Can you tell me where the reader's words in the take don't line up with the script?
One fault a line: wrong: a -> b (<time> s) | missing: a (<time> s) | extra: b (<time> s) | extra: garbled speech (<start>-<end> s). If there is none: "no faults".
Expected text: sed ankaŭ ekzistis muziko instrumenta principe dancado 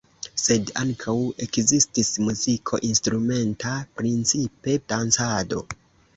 no faults